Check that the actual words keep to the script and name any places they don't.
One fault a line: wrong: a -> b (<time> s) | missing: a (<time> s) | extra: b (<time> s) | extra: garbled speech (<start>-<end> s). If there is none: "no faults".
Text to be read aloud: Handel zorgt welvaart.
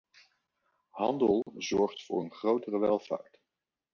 extra: voor een grotere (2.1 s)